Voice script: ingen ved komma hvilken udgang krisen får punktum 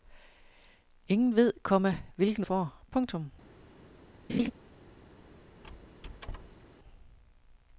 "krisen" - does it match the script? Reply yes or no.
no